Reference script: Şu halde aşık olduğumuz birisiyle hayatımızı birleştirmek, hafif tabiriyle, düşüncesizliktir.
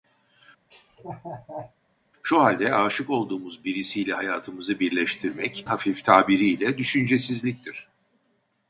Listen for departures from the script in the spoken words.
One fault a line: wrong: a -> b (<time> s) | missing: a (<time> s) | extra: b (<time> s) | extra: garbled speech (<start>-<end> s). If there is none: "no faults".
no faults